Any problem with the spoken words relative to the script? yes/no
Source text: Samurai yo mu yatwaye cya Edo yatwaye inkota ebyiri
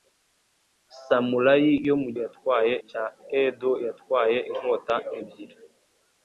no